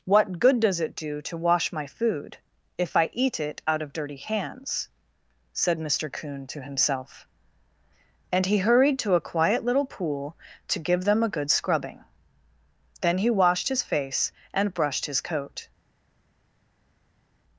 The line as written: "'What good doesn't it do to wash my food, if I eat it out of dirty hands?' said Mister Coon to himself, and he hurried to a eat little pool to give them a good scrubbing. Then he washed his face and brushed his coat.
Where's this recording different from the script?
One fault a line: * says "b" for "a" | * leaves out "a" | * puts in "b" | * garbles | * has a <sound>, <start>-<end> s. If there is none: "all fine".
* says "does" for "doesn't"
* says "quiet" for "eat"